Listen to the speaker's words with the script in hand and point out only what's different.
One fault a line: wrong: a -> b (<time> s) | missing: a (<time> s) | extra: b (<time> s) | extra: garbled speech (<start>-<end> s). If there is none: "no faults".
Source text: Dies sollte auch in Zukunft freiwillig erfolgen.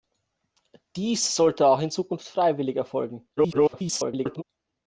extra: garbled speech (3.4-4.4 s)